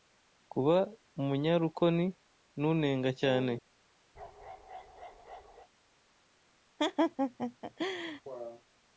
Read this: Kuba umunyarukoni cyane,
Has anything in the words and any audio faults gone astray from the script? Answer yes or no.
yes